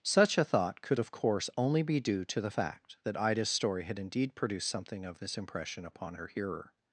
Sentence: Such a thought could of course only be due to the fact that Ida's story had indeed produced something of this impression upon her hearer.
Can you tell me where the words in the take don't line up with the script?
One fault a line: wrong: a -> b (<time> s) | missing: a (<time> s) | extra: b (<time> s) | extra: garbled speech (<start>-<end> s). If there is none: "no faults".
no faults